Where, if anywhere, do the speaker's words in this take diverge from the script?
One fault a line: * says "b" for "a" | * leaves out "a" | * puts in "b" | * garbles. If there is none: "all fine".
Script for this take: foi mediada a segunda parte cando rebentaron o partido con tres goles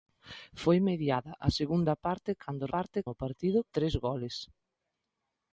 * says "parte" for "rebentaron"
* leaves out "con"